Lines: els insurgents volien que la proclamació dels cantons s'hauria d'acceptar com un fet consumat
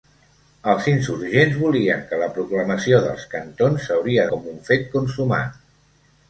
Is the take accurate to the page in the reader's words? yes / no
no